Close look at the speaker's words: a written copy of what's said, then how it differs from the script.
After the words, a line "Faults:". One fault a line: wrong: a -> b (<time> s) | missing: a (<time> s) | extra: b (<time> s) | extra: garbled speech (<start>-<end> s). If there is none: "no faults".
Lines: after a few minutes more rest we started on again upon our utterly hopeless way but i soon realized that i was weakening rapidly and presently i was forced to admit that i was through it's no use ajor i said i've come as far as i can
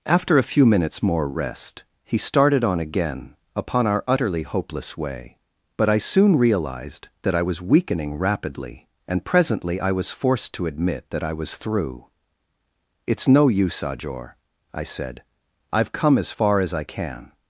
after a few minutes more rest he started on again upon our utterly hopeless way but i soon realized that i was weakening rapidly and presently i was forced to admit that i was through it's no use ajor i said i've come as far as i can
Faults:
wrong: we -> he (2.0 s)